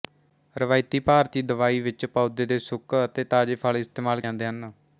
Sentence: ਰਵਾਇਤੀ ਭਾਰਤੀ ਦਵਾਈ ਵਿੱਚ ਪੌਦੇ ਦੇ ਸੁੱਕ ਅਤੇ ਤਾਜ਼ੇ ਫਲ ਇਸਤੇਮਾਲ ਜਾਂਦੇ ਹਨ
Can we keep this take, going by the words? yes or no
yes